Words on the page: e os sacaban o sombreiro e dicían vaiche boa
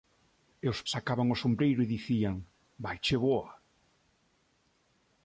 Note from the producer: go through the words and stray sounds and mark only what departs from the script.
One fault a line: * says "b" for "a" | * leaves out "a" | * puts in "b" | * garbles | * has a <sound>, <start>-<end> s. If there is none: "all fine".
all fine